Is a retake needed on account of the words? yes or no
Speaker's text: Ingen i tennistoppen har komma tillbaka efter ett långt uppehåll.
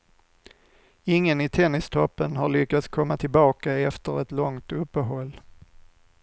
yes